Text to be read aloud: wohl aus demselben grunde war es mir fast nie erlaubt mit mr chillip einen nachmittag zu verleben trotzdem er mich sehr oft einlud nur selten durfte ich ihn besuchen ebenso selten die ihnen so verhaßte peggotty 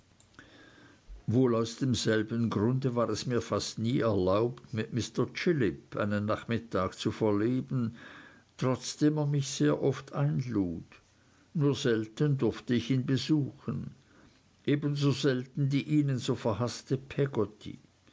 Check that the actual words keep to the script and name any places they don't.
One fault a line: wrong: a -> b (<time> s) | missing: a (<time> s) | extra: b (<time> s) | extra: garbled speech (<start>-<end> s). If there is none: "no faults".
no faults